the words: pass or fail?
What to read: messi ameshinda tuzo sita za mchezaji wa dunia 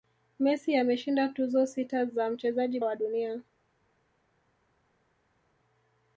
pass